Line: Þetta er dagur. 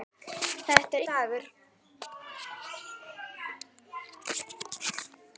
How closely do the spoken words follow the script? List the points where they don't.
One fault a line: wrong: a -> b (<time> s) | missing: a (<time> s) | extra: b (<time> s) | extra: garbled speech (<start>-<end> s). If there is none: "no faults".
no faults